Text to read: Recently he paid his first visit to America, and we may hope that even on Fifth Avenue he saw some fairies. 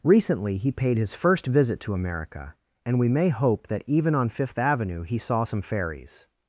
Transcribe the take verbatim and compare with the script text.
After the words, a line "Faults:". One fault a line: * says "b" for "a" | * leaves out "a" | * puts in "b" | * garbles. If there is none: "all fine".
Recently he paid his first visit to America, and we may hope that even on Fifth Avenue he saw some fairies.
Faults:
all fine